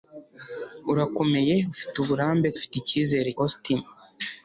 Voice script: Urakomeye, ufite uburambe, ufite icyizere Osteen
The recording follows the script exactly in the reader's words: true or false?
true